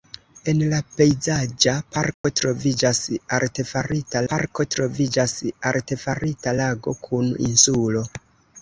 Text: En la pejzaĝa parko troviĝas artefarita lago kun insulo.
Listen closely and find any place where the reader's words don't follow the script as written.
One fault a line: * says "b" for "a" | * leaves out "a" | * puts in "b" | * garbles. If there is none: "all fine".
* puts in "parko troviĝas artefarita"